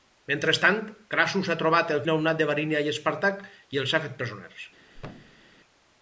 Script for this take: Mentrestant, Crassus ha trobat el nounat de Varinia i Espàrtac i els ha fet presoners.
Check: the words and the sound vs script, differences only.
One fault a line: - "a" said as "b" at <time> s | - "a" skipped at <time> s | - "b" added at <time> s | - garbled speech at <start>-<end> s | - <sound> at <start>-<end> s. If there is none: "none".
- thud at 4.9-5.5 s